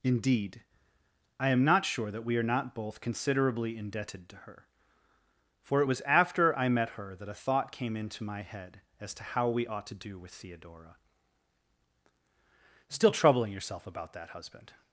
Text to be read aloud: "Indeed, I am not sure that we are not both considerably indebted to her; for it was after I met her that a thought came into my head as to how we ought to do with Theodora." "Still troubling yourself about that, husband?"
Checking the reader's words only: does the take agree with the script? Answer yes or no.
yes